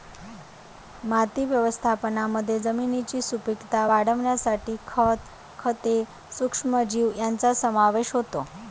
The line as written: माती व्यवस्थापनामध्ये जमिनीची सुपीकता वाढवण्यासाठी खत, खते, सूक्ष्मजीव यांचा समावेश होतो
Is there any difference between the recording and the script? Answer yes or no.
no